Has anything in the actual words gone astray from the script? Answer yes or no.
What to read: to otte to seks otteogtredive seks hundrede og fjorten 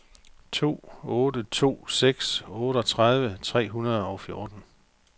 yes